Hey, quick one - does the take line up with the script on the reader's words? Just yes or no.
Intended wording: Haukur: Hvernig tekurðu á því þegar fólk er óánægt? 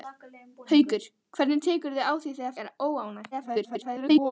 no